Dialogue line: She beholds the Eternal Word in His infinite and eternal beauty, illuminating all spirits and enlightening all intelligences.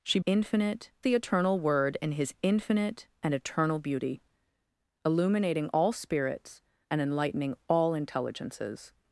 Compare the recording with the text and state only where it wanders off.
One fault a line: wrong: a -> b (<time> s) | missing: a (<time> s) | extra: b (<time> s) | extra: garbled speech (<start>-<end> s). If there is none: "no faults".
wrong: beholds -> infinite (0.2 s)